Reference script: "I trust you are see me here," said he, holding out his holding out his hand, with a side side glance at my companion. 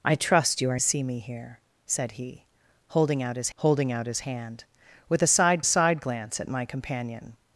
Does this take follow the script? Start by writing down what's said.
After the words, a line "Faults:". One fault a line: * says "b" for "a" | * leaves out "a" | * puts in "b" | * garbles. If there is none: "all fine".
"I trust you are see me here," said he, holding out his holding out his hand, with a side side glance at my companion.
Faults:
all fine